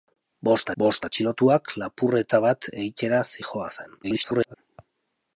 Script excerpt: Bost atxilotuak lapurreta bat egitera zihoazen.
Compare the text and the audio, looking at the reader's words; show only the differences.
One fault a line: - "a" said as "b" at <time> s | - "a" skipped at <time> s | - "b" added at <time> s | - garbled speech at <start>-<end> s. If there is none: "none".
- "bost" added at 0.8 s
- garbled speech at 4.0-4.5 s